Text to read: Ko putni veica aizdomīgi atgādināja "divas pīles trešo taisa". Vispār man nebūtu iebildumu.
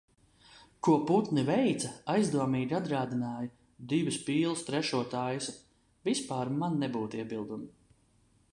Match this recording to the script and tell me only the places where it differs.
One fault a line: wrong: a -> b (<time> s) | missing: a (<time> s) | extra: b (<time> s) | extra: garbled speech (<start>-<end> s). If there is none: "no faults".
no faults